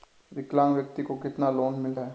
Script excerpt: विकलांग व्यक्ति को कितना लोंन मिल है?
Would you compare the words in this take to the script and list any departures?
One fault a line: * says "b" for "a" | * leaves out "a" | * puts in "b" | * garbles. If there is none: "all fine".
all fine